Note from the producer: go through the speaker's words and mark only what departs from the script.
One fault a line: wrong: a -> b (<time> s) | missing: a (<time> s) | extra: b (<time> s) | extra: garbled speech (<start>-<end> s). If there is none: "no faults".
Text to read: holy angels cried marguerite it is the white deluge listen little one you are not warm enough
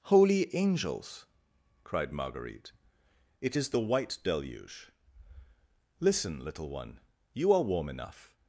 missing: not (7.6 s)